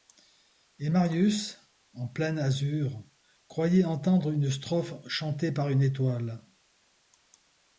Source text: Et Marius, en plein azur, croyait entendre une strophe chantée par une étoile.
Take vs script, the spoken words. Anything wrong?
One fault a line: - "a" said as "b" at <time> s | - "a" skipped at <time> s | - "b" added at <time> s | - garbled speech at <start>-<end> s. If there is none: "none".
none